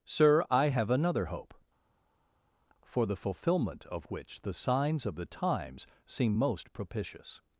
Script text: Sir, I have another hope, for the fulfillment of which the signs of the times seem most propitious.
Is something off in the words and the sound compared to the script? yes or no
no